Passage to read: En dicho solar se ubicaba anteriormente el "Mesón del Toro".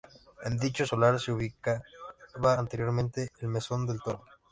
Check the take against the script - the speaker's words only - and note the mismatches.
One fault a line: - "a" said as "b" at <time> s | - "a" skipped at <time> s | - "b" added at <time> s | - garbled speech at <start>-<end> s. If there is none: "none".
none